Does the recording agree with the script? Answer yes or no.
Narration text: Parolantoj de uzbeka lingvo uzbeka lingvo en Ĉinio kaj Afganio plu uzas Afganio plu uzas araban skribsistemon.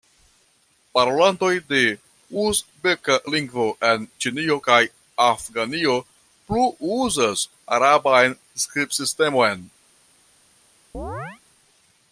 no